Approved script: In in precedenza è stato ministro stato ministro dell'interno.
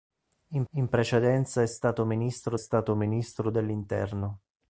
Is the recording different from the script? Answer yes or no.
no